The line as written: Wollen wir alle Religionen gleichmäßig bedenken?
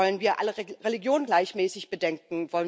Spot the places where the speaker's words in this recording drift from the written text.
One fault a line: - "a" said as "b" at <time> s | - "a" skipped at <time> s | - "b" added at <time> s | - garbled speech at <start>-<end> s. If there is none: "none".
none